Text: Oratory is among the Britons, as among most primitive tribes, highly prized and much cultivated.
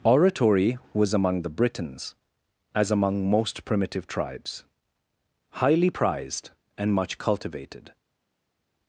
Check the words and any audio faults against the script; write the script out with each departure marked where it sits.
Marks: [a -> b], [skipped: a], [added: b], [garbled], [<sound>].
Oratory [is -> was] among the Britons, as among most primitive tribes, highly prized and much cultivated.